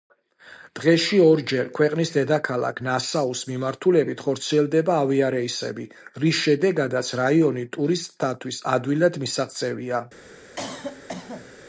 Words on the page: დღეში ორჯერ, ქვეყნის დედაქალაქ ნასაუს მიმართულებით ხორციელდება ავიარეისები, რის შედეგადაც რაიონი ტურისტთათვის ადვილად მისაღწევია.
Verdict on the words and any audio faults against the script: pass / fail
fail